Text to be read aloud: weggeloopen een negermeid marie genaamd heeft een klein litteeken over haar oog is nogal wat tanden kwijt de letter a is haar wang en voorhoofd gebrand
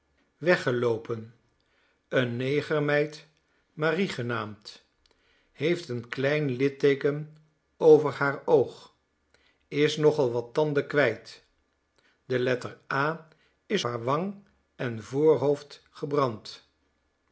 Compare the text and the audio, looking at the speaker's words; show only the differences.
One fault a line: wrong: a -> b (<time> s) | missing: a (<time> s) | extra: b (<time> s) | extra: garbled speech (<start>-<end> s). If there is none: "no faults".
no faults